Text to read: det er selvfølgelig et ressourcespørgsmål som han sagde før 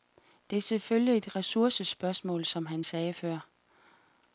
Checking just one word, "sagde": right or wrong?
right